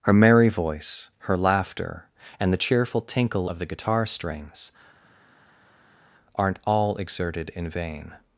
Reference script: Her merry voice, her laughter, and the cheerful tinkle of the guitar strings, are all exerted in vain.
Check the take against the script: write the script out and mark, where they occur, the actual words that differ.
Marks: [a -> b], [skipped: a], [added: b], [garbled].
Her merry voice, her laughter, and the cheerful tinkle of the guitar strings, [are -> aren't] all exerted in vain.